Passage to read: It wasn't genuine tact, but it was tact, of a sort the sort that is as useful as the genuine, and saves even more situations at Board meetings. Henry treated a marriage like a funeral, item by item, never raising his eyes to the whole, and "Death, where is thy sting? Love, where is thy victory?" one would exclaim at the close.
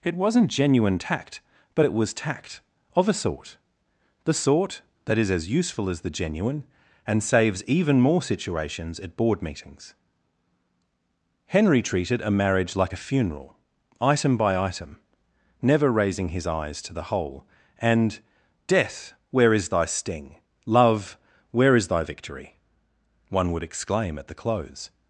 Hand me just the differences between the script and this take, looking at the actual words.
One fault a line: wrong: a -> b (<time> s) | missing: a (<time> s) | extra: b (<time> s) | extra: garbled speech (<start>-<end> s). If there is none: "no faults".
no faults